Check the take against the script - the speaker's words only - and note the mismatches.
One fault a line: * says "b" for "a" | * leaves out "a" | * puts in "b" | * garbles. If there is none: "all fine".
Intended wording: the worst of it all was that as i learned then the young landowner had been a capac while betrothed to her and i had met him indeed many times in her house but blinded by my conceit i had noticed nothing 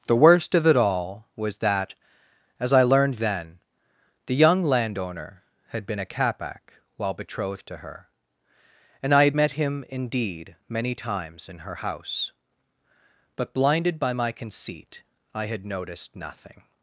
all fine